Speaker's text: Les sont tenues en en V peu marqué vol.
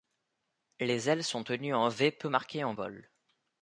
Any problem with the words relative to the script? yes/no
yes